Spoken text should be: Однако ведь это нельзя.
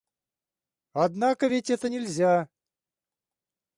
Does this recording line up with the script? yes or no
yes